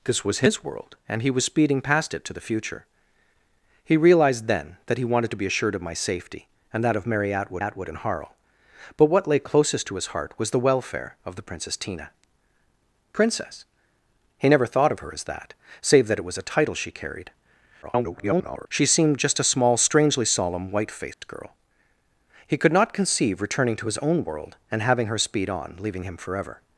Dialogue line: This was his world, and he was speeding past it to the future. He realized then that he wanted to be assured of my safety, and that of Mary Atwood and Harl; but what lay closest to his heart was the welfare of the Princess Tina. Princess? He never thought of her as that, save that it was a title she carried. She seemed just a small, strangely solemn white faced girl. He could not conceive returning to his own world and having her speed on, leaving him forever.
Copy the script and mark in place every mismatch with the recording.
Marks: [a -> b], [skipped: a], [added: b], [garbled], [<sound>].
This was his world, and he was speeding past it to the future. He realized then that he wanted to be assured of my safety, and that of Mary Atwood [added: Atwood] and Harl; but what lay closest to his heart was the welfare of the Princess Tina. Princess? He never thought of her as that, save that it was a title she carried. [garbled] She seemed just a small, strangely solemn white faced [dropout] girl. He could not conceive returning to his own world and having her speed on, leaving him forever.